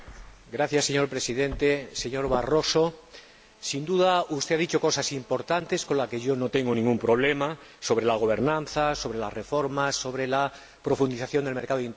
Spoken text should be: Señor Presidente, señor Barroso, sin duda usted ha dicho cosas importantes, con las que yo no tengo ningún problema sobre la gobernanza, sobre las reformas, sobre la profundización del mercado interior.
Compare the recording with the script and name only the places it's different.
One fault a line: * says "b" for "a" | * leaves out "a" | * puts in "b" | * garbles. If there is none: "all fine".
all fine